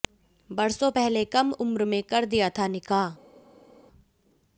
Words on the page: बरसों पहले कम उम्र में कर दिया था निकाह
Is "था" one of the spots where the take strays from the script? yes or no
no